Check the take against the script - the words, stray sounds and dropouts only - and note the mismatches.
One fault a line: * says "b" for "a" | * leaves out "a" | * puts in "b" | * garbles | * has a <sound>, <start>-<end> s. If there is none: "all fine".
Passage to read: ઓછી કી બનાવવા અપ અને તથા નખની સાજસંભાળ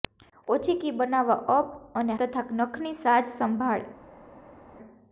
all fine